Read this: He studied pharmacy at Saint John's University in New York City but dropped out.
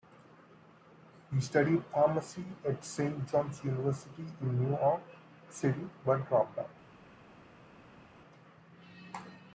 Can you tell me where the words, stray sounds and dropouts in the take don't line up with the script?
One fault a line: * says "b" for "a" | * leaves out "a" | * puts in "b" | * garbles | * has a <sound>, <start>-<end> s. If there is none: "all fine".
all fine